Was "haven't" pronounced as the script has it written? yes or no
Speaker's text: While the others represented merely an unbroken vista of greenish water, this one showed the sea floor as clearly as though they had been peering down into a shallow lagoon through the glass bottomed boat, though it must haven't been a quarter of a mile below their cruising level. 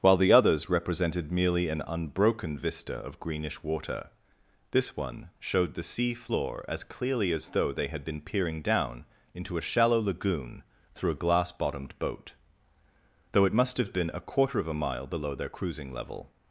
no